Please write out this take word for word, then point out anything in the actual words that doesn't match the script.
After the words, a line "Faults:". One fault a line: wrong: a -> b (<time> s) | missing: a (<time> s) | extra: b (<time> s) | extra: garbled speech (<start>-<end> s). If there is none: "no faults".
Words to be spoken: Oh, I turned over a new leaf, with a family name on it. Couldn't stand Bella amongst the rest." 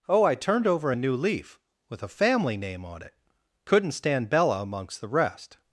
Oh, I turned over a new leaf, with a family name on it. Couldn't stand Bella amongst the rest."
Faults:
no faults